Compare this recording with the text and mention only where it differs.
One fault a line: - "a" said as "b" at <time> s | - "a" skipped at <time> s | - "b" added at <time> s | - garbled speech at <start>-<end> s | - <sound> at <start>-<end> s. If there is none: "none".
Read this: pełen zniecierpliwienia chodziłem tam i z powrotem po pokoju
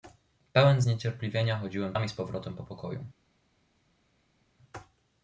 none